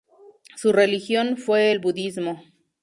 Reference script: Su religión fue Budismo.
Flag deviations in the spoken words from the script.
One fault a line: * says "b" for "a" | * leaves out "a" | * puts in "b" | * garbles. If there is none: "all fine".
* puts in "el"